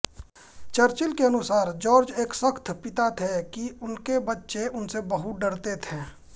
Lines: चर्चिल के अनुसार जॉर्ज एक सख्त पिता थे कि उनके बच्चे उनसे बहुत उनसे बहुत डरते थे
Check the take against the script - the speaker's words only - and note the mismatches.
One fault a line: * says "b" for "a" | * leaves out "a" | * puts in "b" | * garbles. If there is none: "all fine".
* leaves out "उनसे बहुत"